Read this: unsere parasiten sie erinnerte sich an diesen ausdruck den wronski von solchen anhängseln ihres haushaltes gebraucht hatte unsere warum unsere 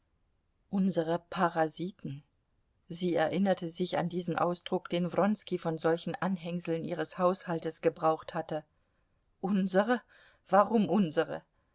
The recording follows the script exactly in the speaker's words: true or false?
true